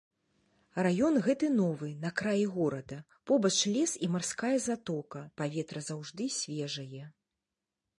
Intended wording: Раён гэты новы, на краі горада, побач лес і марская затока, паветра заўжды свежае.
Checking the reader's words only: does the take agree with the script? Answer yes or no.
yes